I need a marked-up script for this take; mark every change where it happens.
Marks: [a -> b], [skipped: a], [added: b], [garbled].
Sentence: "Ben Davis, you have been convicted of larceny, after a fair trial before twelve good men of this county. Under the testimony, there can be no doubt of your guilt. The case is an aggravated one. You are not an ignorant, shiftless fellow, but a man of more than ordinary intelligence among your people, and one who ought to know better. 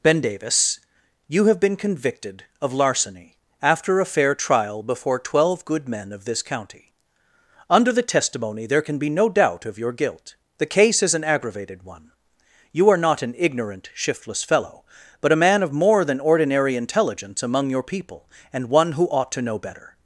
"Ben Davis, you have been convicted of larceny, after a fair trial before twelve good men of this county. Under the testimony, there can be no doubt of your guilt. The case is an aggravated one. You are not an ignorant, shiftless fellow, but a man of more than ordinary intelligence among your people, and one who ought to know better.